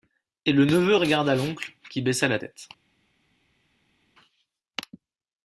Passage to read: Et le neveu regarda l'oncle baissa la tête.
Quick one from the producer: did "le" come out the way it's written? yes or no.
yes